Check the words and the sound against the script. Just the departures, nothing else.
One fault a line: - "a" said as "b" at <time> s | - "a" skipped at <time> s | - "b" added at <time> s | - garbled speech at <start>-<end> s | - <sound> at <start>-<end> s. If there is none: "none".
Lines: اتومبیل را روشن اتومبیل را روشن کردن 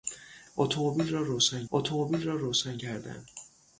none